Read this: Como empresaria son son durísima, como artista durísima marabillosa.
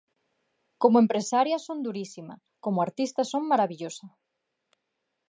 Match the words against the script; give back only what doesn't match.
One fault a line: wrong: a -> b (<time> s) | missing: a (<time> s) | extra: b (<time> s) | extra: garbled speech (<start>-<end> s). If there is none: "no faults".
missing: son (1.8 s)
wrong: durísima -> son (3.2 s)